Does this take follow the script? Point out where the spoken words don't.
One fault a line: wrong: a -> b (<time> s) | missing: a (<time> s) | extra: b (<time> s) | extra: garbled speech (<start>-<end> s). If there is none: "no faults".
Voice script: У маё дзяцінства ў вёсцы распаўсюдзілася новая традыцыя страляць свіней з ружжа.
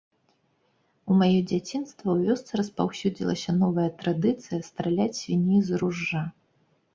no faults